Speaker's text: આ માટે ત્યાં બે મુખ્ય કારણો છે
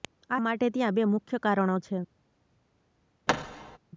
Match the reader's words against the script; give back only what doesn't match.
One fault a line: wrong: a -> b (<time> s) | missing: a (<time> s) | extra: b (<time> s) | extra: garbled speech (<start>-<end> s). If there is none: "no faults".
no faults